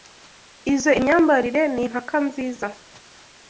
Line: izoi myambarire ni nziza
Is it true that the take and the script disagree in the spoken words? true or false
true